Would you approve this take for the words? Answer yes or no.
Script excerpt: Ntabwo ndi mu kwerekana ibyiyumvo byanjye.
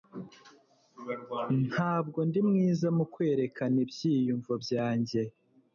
no